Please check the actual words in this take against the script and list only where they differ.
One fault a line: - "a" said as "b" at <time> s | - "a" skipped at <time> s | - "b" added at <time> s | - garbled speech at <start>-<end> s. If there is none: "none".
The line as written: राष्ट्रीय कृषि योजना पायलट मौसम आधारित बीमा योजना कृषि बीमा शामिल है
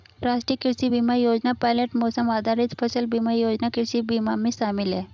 - "बीमा" added at 0.9 s
- "फसल" added at 2.8 s
- "में" added at 4.4 s